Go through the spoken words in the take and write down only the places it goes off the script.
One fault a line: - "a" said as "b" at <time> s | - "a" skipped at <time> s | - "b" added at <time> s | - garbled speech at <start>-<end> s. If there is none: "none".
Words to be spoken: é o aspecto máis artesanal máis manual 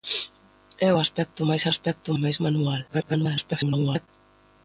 - "artesanal" said as "aspecto" at 1.7 s
- garbled speech at 2.9-4.1 s